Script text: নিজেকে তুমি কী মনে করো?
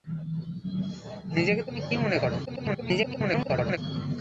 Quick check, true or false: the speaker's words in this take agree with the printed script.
false